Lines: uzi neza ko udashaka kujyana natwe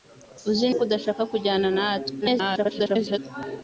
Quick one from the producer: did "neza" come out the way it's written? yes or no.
no